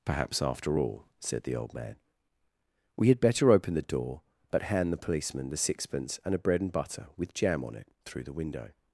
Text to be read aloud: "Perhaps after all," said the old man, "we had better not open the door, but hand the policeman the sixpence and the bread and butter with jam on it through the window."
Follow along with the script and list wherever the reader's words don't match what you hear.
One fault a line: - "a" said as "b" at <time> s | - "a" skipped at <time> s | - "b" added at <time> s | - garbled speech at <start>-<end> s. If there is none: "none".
- "not" skipped at 3.5 s
- "the" said as "a" at 6.3 s